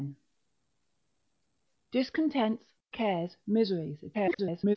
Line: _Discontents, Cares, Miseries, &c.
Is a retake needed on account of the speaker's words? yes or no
yes